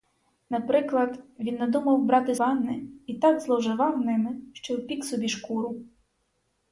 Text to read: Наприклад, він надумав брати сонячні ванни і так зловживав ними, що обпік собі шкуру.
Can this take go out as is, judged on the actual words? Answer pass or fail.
fail